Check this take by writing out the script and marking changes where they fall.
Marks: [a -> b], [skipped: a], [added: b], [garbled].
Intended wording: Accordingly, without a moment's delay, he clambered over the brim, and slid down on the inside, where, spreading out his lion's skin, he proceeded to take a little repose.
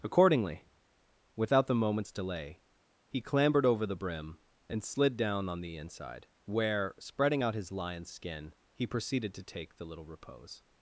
Accordingly, without [a -> the] moment's delay, he clambered over the brim, and slid down on the inside, where, spreading out his lion's skin, he proceeded to take [a -> the] little repose.